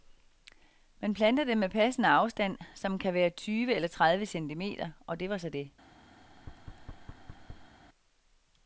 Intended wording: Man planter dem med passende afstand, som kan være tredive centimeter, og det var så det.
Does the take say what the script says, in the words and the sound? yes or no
no